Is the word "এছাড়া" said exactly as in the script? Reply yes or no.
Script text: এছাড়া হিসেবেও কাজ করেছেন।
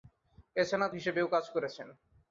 yes